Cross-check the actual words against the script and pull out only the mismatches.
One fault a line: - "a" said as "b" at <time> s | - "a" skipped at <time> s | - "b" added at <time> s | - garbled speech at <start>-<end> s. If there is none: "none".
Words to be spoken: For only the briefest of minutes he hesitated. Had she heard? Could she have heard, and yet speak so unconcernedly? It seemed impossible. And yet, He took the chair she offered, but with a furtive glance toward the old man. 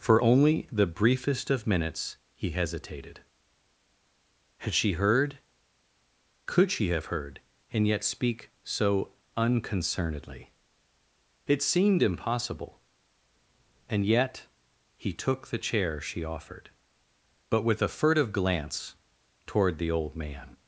none